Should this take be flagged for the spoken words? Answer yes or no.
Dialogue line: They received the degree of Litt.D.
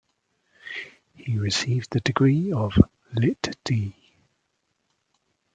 yes